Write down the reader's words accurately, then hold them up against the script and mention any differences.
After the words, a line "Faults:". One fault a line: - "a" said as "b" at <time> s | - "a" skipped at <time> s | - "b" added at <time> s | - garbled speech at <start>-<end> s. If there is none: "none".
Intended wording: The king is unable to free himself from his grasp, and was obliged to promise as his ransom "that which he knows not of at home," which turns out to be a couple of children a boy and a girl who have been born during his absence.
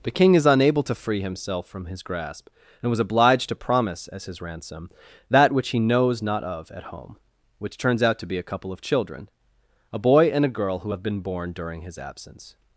The king is unable to free himself from his grasp, and was obliged to promise as his ransom "that which he knows not of at home," which turns out to be a couple of children a boy and a girl who have been born during his absence.
Faults:
none